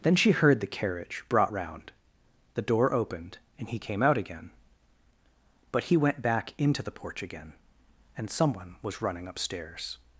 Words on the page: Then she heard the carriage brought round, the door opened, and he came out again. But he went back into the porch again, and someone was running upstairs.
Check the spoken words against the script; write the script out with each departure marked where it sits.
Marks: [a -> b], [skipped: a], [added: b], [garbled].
Then she heard the carriage brought round, the door opened, and he came out again. But he went back into the porch again, and someone was running upstairs.